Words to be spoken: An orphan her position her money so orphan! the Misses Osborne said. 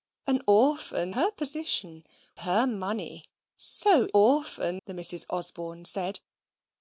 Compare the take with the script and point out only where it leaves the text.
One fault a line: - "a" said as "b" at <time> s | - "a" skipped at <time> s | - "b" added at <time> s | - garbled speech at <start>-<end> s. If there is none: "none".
none